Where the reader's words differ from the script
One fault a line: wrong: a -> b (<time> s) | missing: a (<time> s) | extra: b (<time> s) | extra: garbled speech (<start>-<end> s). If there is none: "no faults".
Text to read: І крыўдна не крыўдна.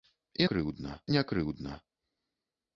no faults